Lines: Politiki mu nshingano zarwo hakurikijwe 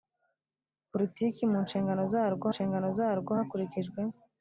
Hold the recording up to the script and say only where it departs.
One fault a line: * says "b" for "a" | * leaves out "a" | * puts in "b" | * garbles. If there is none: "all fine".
* puts in "nshingano zarwo"